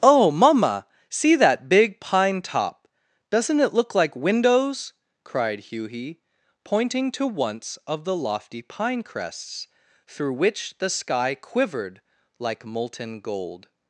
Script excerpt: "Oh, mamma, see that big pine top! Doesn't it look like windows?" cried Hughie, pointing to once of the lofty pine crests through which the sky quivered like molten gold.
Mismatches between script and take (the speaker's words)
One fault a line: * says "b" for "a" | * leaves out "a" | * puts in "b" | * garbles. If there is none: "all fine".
all fine